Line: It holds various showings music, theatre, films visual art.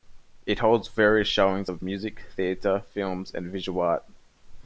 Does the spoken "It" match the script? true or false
true